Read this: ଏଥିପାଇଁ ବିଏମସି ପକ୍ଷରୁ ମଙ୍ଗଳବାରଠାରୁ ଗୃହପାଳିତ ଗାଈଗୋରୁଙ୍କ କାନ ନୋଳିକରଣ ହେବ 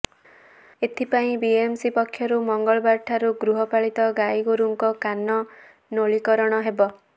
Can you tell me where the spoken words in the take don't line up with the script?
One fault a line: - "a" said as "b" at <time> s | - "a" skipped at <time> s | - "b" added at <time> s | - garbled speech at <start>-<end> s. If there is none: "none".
none